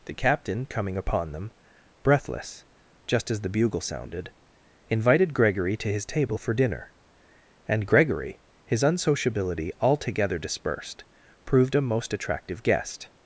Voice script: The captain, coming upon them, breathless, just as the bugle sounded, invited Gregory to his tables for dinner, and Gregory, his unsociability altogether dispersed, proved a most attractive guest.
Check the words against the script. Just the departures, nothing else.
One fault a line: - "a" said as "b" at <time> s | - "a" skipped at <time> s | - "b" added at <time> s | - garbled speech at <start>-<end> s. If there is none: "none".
- "tables" said as "table" at 6.0 s